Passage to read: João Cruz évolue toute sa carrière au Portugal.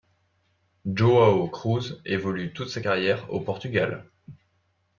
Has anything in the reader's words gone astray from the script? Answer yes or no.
no